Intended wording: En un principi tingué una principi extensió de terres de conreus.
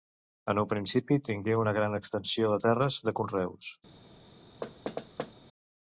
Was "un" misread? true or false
false